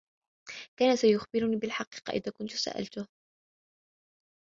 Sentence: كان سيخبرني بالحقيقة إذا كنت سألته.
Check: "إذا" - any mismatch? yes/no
no